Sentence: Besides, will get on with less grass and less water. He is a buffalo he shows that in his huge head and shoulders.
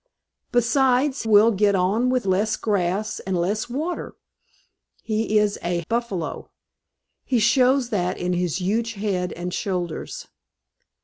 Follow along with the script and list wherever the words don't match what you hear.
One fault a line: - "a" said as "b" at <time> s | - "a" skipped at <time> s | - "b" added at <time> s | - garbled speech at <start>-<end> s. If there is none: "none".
none